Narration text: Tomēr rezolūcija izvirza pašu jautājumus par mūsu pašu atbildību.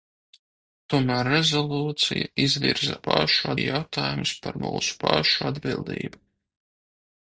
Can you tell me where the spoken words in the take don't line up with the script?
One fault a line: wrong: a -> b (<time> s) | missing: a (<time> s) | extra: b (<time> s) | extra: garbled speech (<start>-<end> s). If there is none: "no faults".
no faults